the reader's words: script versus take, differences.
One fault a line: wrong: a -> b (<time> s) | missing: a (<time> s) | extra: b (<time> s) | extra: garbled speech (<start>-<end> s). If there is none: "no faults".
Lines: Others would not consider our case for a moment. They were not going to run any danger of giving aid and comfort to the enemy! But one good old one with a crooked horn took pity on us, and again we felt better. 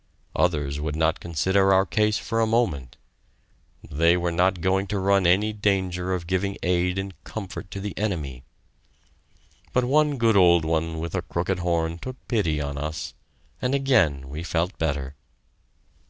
no faults